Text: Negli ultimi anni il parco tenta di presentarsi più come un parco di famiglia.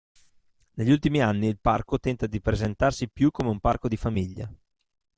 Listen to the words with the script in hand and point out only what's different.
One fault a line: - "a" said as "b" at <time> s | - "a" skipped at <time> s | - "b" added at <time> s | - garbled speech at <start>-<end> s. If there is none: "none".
none